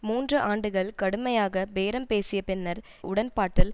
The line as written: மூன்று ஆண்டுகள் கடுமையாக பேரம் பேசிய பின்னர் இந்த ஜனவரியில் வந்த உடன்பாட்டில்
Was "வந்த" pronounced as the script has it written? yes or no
no